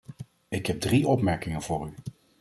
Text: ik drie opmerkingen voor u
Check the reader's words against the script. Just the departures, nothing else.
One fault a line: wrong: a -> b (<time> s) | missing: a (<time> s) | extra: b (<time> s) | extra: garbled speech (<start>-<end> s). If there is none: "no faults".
extra: heb (0.7 s)